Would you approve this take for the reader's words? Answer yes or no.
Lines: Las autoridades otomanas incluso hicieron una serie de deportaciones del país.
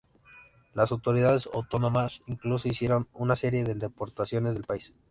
yes